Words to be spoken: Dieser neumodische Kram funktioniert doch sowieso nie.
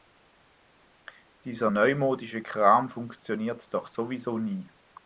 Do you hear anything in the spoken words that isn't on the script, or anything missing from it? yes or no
no